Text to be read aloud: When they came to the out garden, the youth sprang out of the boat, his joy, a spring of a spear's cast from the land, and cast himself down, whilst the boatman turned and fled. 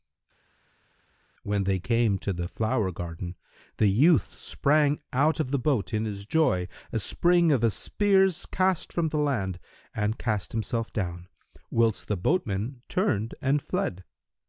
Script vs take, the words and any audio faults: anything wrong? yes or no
yes